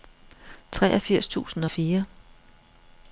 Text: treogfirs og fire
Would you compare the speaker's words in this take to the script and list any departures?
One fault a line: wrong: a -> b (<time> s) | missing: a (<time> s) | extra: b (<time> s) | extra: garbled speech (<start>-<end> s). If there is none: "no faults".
extra: tusind (1.3 s)